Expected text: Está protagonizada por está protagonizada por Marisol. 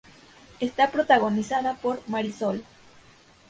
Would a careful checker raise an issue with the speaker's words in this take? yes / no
yes